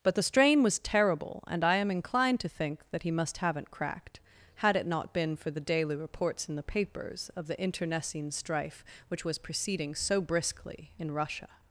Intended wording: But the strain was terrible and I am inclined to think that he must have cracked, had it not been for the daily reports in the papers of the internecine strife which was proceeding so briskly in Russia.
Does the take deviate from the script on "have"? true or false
true